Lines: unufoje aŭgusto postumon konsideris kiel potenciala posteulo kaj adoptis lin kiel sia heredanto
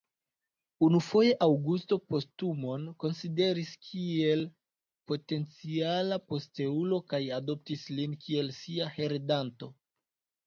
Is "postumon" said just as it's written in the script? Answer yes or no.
yes